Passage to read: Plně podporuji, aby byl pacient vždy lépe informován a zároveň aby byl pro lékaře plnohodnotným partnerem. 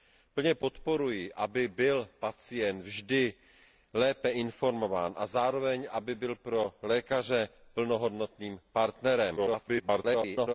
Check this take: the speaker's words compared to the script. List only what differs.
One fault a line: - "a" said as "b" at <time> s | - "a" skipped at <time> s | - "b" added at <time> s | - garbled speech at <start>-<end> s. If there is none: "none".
- garbled speech at 9.4-10.5 s